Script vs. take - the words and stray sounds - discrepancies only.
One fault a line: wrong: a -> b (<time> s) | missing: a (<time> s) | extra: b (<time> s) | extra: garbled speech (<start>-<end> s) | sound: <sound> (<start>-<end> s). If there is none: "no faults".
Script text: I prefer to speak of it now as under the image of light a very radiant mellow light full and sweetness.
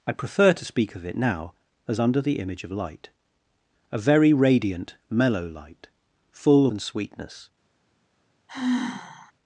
sound: sigh (8.5-9.3 s)